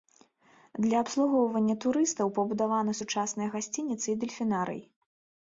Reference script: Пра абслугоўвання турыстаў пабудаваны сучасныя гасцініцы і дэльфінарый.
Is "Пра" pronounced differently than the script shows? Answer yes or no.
yes